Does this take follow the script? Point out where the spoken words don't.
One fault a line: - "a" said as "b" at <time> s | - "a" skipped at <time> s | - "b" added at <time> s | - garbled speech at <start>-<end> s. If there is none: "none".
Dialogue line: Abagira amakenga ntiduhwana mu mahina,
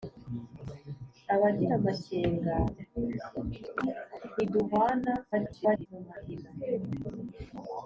- garbled speech at 5.3-5.9 s